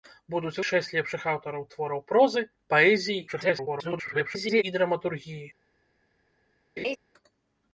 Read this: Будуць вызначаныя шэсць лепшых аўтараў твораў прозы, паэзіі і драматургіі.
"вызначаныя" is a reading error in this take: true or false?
true